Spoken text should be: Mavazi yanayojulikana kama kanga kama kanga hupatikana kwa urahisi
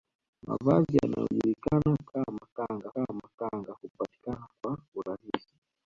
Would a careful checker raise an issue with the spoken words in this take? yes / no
no